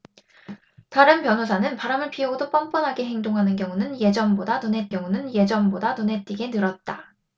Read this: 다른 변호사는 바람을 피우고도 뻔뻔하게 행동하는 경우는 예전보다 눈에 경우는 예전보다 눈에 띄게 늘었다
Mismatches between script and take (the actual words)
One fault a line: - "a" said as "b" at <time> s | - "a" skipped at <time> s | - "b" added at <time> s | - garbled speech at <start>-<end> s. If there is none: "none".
none